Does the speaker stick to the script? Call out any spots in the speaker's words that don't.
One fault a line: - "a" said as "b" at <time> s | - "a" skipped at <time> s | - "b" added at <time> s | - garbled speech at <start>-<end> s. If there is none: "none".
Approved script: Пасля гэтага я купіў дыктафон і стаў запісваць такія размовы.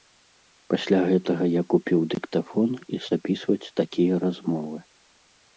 - "стаў" skipped at 3.0 s